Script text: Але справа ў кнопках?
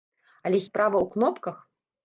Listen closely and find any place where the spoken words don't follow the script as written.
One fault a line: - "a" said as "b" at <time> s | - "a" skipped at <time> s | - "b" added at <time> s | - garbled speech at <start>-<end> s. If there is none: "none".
none